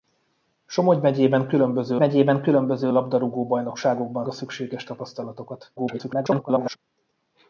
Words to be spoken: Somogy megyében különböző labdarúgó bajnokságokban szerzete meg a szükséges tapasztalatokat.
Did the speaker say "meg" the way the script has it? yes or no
no